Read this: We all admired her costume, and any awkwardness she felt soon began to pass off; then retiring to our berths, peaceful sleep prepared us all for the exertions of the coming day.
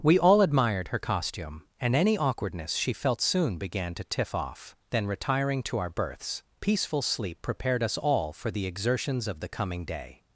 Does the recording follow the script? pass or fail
fail